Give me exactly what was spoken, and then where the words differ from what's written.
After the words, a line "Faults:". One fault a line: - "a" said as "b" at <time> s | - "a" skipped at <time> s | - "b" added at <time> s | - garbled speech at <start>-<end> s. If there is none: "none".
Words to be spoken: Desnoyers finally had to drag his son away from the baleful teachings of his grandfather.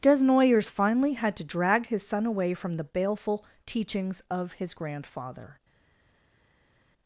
Desnoyers finally had to drag his son away from the baleful teachings of his grandfather.
Faults:
none